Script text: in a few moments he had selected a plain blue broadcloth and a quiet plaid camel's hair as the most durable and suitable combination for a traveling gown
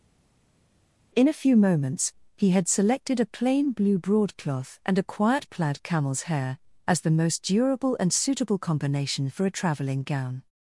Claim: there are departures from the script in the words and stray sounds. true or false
false